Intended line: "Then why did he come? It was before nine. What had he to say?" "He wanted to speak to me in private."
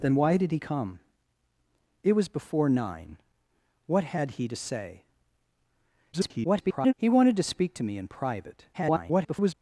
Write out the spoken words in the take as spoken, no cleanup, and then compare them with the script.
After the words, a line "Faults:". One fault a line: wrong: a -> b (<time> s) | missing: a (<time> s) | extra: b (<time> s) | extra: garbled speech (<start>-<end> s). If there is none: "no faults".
"Then why did he come? It was before nine. What had he to say?" [garbled] "He wanted to speak to me in private." [garbled]
Faults:
extra: garbled speech (6.1-6.9 s)
extra: garbled speech (8.7-9.5 s)